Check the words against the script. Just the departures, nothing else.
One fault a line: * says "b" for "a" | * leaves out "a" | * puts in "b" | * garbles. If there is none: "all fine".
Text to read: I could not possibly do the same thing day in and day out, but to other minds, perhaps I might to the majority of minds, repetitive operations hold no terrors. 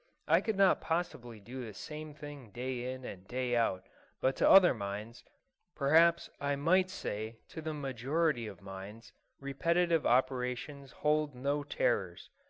* puts in "say"